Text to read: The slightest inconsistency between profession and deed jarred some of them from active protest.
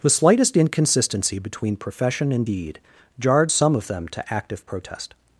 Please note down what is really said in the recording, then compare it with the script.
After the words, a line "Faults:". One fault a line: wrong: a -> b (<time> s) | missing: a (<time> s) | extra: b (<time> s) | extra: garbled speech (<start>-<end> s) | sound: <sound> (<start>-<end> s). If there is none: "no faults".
The slightest inconsistency between profession and deed jarred some of them to active protest.
Faults:
wrong: from -> to (4.1 s)